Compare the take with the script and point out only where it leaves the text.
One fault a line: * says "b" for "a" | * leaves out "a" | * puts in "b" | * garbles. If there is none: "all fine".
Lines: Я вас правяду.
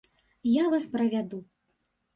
all fine